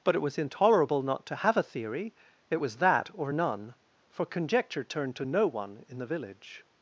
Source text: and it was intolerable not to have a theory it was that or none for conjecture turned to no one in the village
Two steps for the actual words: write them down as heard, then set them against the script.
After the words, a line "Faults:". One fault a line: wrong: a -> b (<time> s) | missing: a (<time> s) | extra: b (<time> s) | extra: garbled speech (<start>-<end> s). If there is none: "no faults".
but it was intolerable not to have a theory it was that or none for conjecture turned to no one in the village
Faults:
wrong: and -> but (0.0 s)